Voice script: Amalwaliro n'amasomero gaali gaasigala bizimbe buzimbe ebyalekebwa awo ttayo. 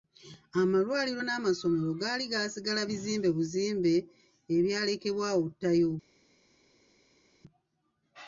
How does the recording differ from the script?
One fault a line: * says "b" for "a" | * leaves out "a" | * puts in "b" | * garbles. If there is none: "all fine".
all fine